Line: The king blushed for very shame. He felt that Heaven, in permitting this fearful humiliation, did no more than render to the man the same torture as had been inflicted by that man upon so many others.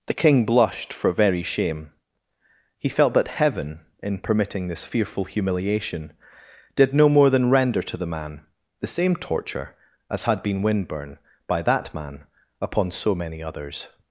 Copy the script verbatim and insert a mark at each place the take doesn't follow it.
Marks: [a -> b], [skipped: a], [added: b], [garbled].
The king blushed for very shame. He felt that Heaven, in permitting this fearful humiliation, did no more than render to the man the same torture as had been [inflicted -> windburn] by that man upon so many others.